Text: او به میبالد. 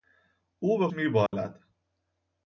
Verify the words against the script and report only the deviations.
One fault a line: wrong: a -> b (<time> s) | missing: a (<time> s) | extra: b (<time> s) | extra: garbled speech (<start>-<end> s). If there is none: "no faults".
no faults